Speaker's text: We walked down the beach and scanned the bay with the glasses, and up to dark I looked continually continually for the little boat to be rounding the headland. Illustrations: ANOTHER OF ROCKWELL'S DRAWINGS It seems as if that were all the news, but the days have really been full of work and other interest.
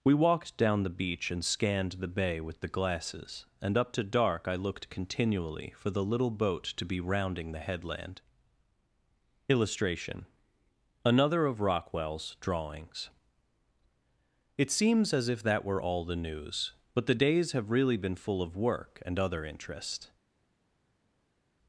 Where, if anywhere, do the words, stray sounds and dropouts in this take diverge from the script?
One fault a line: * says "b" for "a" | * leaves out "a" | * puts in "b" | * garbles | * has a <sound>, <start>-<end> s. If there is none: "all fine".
* leaves out "continually"
* says "Illustration" for "Illustrations"